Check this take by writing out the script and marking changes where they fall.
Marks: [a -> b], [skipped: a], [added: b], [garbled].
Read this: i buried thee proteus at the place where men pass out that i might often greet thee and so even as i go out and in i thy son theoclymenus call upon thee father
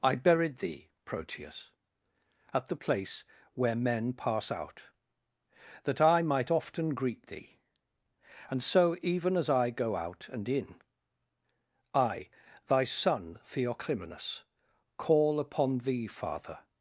i buried thee proteus at the place where men pass out that i might often greet thee and so even as i go out and in i thy son theoclymenus call upon thee father